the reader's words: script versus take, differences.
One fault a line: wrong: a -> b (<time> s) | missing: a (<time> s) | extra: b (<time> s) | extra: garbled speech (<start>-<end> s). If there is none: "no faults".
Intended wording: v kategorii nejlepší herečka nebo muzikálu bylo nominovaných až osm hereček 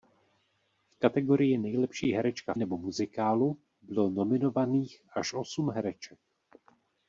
no faults